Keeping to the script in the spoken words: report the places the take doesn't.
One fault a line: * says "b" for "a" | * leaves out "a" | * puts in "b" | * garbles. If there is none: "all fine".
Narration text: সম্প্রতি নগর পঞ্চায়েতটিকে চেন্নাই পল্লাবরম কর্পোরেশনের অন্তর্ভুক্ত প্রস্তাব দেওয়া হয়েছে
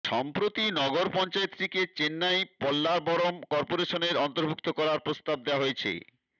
* puts in "করার"